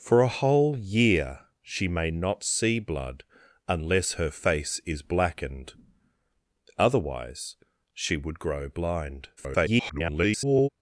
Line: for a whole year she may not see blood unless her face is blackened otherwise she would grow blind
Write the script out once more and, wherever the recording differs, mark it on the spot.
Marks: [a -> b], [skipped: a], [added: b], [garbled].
for a whole year she may not see blood unless her face is blackened otherwise she would grow blind [garbled]